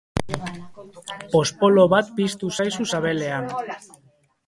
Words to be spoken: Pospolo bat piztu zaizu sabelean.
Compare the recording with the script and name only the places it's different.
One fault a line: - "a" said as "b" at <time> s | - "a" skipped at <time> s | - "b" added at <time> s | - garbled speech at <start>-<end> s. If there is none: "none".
none